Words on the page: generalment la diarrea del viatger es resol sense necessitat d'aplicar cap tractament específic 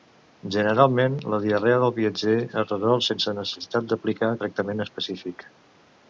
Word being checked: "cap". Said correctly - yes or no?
no